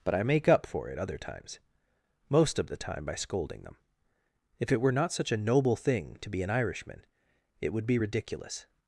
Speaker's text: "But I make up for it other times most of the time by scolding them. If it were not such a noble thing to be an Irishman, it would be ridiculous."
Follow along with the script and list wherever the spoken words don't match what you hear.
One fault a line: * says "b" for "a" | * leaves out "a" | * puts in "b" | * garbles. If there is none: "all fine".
all fine